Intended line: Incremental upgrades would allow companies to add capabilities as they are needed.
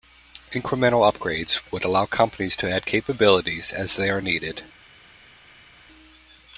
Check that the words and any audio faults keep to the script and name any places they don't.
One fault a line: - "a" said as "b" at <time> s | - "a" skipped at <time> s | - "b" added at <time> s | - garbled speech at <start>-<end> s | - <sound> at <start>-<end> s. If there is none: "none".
none